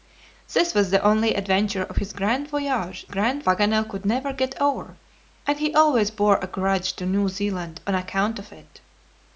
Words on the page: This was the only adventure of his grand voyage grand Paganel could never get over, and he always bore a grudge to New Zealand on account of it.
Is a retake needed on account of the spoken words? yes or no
no